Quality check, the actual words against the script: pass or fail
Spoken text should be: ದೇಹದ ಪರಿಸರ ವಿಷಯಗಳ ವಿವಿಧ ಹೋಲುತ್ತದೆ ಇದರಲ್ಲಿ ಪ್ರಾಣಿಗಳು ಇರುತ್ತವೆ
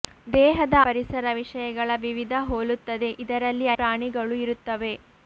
pass